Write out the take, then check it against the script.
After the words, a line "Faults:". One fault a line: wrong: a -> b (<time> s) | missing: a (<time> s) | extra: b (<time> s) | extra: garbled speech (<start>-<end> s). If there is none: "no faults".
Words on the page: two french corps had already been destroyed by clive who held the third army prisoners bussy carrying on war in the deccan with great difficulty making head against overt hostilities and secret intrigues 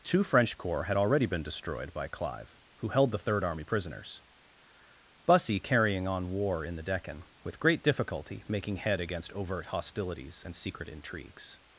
two french corps had already been destroyed by clive who held the third army prisoners bussy carrying on war in the deccan with great difficulty making head against overt hostilities and secret intrigues
Faults:
no faults